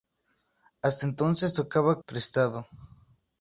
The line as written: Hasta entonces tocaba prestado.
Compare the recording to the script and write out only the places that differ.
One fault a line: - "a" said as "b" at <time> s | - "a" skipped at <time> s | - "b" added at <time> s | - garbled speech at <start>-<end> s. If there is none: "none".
none